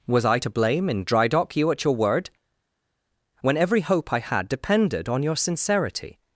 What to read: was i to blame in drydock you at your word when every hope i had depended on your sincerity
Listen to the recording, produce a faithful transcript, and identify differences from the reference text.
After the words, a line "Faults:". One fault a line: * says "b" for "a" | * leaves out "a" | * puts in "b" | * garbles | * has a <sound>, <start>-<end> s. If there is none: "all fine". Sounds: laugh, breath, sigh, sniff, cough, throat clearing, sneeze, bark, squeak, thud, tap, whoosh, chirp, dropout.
was i to blame in drydock you at your word when every hope i had depended on your sincerity
Faults:
all fine